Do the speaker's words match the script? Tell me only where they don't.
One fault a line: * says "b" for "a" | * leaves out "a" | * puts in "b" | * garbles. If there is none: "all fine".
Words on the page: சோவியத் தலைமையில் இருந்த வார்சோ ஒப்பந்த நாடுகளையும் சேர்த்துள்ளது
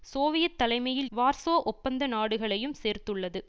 * leaves out "இருந்த"